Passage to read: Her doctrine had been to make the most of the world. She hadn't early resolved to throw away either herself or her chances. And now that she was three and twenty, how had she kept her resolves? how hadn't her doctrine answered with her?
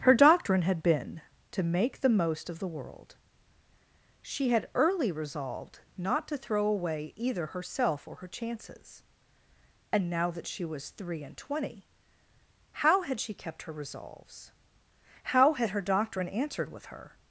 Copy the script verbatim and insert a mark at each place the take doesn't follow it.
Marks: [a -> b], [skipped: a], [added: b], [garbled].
Her doctrine had been to make the most of the world. She [hadn't -> had] early resolved [added: not] to throw away either herself or her chances. And now that she was three and twenty, how had she kept her resolves? how [hadn't -> had] her doctrine answered with her?